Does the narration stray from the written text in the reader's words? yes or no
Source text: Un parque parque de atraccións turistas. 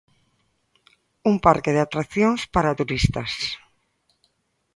yes